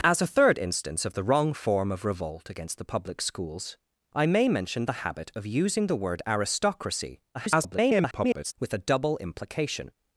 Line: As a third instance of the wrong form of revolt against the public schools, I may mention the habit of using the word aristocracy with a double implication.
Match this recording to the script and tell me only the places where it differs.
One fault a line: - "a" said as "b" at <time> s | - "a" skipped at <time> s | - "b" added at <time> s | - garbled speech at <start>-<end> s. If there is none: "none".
- garbled speech at 7.3-8.5 s